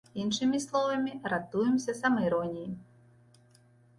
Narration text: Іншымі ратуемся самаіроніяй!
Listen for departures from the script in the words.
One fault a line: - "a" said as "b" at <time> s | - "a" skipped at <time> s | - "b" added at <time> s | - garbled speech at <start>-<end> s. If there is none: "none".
- "словамі" added at 0.6 s